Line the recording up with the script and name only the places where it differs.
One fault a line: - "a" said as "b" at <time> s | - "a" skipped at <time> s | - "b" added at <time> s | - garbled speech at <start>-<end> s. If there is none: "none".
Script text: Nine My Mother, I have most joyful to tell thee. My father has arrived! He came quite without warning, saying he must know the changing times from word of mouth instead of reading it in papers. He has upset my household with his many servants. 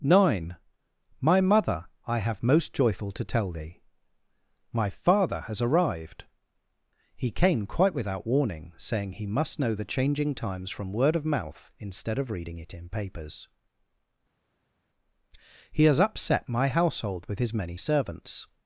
none